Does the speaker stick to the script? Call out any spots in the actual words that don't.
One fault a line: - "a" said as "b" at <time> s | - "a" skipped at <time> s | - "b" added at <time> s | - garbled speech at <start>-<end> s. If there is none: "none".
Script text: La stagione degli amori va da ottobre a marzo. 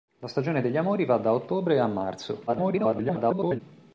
- garbled speech at 2.5-3.6 s